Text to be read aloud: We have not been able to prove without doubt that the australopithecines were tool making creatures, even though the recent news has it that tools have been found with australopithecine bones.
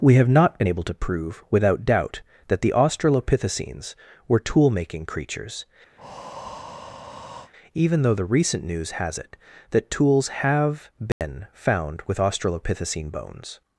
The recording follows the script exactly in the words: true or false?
true